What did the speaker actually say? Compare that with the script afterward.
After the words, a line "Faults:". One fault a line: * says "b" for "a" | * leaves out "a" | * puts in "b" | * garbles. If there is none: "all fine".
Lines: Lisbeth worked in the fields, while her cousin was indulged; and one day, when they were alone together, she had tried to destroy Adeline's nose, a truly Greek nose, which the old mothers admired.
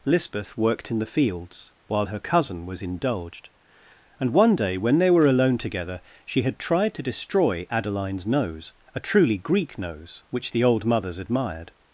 Lisbeth worked in the fields, while her cousin was indulged; and one day, when they were alone together, she had tried to destroy Adeline's nose, a truly Greek nose, which the old mothers admired.
Faults:
all fine